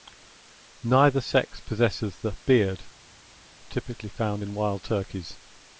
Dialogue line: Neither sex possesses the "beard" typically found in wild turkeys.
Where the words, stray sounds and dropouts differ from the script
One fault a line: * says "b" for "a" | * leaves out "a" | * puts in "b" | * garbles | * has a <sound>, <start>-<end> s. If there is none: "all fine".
all fine